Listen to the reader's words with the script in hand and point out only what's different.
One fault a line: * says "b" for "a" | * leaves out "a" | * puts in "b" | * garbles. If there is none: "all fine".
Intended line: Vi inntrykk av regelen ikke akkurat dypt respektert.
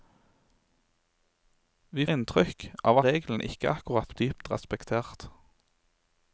all fine